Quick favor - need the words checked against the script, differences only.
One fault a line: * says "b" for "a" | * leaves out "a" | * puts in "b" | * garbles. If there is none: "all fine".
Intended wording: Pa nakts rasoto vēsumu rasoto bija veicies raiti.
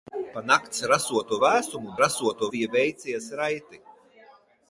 all fine